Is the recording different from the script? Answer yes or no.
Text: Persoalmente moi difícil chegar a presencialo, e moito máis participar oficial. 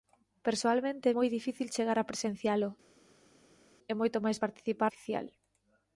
no